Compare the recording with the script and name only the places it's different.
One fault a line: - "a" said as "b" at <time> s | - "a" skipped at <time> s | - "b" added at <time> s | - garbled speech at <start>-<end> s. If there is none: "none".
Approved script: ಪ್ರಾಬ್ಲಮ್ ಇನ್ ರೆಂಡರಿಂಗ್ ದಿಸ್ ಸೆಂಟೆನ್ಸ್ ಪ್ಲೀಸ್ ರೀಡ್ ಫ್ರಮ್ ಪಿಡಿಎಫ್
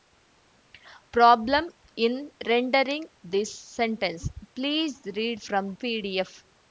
none